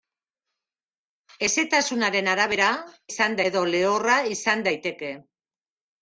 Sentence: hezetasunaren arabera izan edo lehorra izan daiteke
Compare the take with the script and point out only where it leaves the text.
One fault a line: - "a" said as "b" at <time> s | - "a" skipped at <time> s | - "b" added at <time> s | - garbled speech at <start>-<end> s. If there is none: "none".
none